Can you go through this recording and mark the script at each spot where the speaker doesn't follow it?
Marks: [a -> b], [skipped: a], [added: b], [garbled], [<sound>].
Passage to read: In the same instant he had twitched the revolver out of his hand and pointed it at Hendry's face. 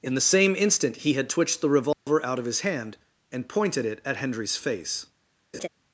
In the same instant he had twitched the revolver [dropout] out of his hand and pointed it at Hendry's face. [laugh]